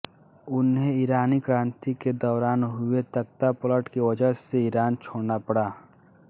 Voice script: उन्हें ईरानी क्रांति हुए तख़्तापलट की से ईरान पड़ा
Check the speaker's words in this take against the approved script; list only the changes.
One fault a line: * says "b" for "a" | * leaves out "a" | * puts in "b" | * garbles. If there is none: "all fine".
* puts in "के दौरान"
* puts in "वजह"
* puts in "छोड़ना"